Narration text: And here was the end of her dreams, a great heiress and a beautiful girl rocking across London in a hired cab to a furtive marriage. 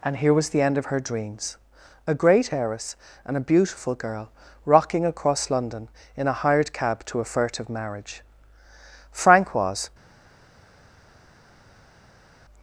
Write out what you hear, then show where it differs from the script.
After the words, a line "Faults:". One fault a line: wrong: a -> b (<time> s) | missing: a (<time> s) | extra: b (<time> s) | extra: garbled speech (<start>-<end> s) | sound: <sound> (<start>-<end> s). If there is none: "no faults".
And here was the end of her dreams, a great heiress and a beautiful girl rocking across London in a hired cab to a furtive marriage. Frank was
Faults:
extra: Frank was (9.1 s)